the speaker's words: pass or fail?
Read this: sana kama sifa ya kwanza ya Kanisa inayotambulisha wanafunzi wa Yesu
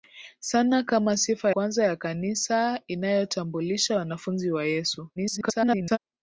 fail